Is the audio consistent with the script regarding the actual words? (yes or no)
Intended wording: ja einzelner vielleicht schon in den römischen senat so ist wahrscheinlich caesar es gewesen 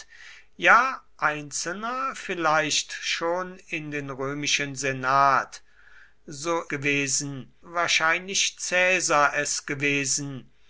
no